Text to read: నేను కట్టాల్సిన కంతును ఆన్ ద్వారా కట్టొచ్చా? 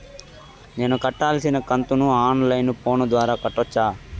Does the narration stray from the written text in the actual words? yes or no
yes